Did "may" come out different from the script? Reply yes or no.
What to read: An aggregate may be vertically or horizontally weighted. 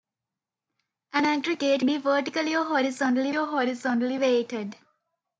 yes